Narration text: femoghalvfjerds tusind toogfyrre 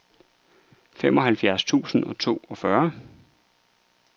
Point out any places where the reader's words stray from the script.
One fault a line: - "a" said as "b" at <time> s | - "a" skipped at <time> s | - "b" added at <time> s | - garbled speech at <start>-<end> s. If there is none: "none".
- "og" added at 2.0 s